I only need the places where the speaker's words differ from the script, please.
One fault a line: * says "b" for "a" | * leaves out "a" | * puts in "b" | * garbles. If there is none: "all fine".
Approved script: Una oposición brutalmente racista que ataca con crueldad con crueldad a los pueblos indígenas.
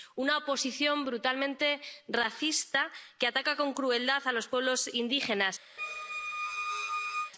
* leaves out "con crueldad"